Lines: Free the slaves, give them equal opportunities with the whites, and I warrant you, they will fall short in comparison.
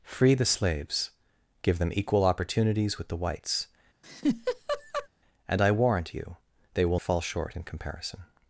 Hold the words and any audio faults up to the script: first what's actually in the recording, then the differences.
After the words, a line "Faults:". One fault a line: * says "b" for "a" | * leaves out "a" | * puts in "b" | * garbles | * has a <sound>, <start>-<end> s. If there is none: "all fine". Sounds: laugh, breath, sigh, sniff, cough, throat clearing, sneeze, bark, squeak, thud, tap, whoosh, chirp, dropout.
Free the slaves, give them equal opportunities with the whites, and I warrant you, they will fall short in comparison.
Faults:
* has a laugh, 4.0-5.1 s